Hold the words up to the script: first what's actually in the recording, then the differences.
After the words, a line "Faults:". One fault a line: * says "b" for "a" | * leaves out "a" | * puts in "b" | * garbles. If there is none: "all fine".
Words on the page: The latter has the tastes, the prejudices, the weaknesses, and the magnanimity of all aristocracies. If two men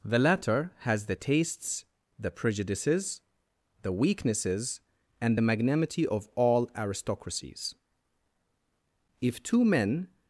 The latter has the tastes, the prejudices, the weaknesses, and the magnanimity of all aristocracies. If two men
Faults:
all fine